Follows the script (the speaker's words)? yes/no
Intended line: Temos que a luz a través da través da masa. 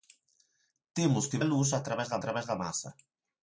yes